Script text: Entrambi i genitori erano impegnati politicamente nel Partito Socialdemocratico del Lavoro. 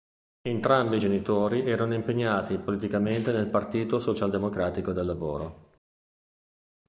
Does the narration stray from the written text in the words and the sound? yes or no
no